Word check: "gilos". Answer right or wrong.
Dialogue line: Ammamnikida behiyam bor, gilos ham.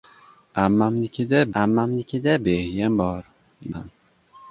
wrong